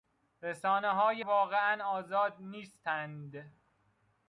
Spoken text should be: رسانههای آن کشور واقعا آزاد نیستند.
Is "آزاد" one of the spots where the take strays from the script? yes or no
no